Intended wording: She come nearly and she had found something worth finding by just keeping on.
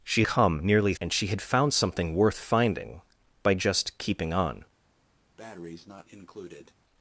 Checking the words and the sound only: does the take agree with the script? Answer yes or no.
no